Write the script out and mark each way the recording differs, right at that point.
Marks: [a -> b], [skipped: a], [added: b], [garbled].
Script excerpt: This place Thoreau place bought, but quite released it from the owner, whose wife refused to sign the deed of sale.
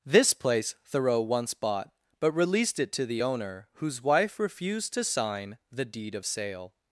This place Thoreau [place -> once] bought, but [skipped: quite] released it [from -> to] the owner, whose wife refused to sign the deed of sale.